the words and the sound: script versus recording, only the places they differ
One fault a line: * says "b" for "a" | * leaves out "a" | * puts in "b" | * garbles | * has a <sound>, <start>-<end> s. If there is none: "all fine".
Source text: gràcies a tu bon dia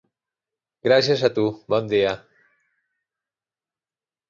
all fine